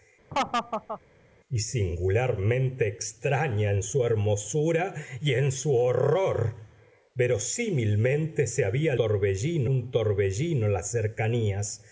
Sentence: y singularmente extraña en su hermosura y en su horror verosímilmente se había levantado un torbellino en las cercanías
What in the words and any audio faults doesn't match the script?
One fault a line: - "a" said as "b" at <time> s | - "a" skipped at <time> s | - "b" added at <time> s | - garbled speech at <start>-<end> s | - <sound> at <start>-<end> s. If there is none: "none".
- laugh at 0.3-1.0 s
- "levantado" said as "torbellino" at 8.9 s